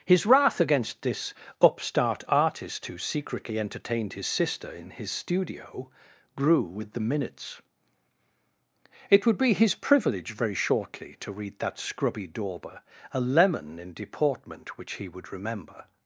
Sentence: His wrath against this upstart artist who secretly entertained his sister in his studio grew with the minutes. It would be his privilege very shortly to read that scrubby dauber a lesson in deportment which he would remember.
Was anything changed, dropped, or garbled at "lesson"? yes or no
yes